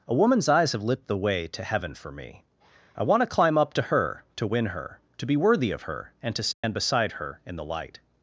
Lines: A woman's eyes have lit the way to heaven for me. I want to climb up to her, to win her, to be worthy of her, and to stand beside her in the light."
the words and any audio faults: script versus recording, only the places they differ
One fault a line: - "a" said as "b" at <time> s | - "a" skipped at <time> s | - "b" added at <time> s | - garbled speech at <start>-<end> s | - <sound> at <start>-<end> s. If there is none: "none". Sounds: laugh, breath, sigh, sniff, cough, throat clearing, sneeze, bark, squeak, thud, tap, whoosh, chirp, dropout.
- dropout at 6.5-6.6 s